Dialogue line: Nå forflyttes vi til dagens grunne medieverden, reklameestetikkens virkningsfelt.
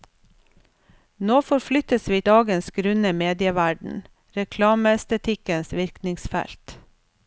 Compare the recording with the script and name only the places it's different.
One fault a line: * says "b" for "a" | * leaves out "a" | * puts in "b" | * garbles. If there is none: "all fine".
* leaves out "til"